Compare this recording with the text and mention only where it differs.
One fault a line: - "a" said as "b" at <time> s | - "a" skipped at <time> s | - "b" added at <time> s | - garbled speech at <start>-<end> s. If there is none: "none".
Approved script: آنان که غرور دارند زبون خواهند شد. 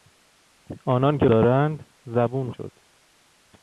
- "غرور" skipped at 1.2 s
- "خواهند" skipped at 2.5 s